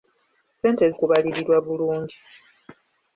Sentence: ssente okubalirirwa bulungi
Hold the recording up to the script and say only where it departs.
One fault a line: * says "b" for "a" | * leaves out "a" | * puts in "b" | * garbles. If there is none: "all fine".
all fine